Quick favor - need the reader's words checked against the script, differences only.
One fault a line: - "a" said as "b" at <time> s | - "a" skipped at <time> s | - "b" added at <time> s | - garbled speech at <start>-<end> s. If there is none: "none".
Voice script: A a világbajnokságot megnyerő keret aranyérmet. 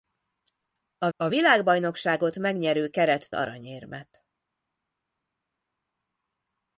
none